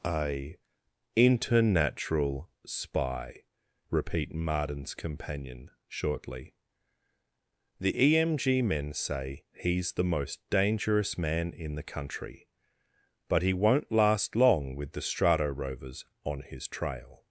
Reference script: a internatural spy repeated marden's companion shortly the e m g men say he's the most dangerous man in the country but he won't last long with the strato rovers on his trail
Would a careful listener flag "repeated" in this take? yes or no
yes